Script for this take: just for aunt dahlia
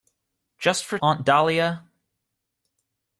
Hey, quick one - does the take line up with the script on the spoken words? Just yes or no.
yes